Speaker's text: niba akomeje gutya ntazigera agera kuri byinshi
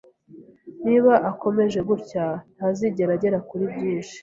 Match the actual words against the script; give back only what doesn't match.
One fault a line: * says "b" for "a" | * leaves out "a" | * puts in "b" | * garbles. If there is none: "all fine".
all fine